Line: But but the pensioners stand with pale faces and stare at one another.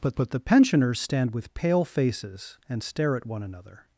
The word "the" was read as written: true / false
true